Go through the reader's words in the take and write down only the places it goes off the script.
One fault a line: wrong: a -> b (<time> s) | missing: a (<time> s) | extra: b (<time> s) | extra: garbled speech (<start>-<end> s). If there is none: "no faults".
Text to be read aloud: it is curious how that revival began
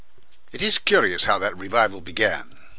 no faults